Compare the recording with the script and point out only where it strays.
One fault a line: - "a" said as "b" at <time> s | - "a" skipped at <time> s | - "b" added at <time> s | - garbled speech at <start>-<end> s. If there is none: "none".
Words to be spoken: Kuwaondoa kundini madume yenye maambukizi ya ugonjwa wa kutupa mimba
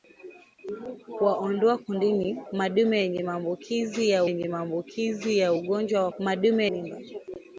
- "yenye maambukizi ya" added at 4.2 s
- "kutupa" said as "madume" at 6.2 s